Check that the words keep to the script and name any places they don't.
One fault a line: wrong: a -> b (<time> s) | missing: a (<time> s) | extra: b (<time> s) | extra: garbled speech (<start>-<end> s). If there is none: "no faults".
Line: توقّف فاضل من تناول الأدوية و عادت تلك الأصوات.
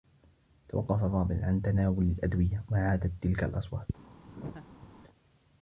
wrong: من -> عن (1.4 s)